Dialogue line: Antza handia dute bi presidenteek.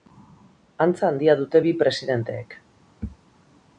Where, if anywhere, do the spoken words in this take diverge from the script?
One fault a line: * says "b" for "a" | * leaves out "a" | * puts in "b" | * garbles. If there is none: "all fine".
all fine